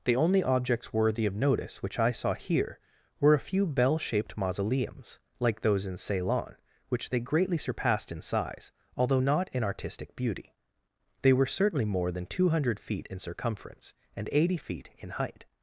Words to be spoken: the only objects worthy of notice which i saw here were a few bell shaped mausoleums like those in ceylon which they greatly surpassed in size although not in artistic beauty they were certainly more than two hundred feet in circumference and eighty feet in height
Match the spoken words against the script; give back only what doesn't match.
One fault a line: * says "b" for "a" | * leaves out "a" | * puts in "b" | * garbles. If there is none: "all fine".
all fine